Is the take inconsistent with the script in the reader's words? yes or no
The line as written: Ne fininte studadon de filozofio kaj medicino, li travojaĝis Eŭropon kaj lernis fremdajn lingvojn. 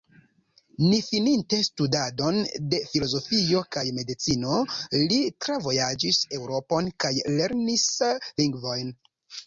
yes